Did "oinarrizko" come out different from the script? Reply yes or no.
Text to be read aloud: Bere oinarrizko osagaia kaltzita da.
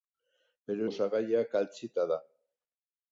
yes